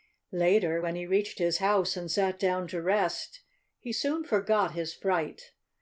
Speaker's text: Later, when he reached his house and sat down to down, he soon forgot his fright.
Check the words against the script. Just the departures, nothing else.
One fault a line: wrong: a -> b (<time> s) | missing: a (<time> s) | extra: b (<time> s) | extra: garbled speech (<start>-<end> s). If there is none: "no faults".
wrong: down -> rest (2.8 s)